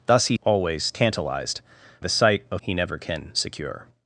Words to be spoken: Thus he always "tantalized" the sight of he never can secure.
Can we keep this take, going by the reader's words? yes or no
yes